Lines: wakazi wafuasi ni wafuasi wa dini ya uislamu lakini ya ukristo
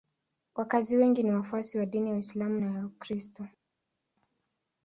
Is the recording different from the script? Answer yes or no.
yes